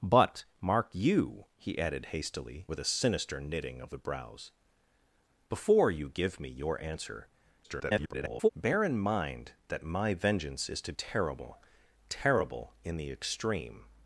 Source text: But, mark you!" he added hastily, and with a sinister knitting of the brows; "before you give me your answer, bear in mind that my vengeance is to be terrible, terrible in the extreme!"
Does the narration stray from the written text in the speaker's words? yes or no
yes